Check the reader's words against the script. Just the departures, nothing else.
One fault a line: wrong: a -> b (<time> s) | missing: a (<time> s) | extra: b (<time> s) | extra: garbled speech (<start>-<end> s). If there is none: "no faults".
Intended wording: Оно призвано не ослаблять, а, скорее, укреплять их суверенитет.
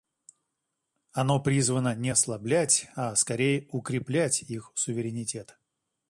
no faults